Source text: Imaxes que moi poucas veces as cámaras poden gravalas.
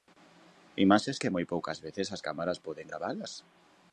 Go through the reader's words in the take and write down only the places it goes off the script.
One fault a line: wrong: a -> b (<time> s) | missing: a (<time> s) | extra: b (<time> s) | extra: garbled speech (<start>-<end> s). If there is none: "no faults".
no faults